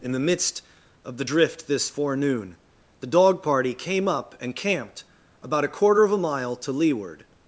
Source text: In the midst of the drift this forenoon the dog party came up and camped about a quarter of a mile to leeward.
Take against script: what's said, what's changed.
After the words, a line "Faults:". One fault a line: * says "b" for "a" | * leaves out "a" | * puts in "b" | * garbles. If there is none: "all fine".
In the midst of the drift this forenoon the dog party came up and camped about a quarter of a mile to leeward.
Faults:
all fine